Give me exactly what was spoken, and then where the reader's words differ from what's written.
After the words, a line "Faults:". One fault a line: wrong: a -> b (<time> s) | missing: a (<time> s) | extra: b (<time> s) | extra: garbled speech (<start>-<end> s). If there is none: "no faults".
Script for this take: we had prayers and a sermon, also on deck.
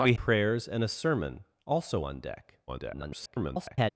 we prayers and a sermon, also on deck. [garbled]
Faults:
missing: had (0.1 s)
extra: garbled speech (2.7-3.9 s)